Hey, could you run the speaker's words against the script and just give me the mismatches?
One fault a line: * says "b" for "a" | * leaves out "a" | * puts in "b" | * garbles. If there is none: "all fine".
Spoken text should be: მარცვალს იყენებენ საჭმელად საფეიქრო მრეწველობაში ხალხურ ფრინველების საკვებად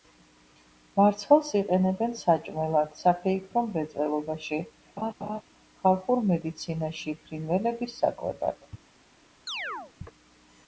* puts in "მედიცინაში"